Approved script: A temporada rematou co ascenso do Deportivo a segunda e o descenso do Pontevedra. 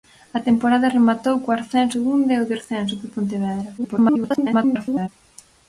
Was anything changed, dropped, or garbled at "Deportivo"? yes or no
yes